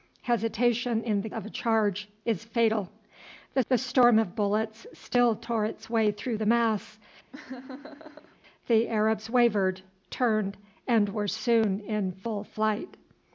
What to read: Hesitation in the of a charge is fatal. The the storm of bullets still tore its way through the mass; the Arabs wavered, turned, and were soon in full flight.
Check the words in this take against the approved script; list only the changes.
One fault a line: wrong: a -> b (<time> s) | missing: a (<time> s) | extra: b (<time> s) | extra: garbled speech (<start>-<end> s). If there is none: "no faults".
no faults